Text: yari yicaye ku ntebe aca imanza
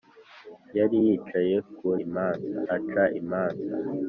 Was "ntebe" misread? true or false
true